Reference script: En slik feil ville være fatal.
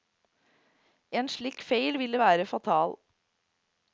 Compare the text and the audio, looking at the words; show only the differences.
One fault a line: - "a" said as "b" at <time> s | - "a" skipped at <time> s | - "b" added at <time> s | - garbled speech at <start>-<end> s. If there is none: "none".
none